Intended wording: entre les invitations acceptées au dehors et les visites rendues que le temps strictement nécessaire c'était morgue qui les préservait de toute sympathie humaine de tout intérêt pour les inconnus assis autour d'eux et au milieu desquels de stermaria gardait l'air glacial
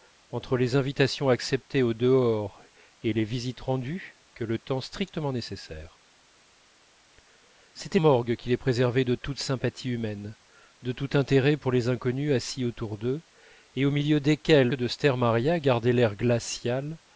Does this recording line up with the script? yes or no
yes